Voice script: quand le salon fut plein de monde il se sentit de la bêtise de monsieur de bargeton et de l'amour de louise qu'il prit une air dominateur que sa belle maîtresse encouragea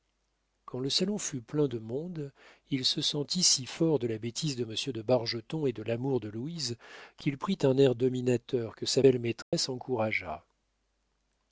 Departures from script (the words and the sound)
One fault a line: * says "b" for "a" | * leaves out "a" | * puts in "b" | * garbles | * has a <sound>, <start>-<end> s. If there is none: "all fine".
* puts in "si fort"
* says "un" for "une"
* has a dropout, 9.4-9.5 s